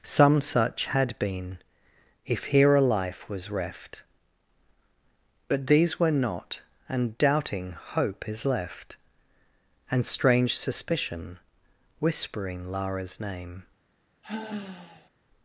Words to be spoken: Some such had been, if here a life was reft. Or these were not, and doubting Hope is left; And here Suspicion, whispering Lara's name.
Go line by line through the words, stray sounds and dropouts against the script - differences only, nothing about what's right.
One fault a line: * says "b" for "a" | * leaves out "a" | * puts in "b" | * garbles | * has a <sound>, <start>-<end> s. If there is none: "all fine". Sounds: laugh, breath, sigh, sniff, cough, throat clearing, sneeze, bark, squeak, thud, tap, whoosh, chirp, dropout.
* says "But" for "Or"
* says "strange" for "here"
* has a sigh, 14.2-15.1 s